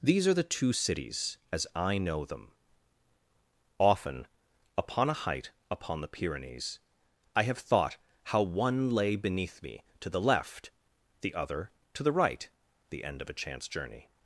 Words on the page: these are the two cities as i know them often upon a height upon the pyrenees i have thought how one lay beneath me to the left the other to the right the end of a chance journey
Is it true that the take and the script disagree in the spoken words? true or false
false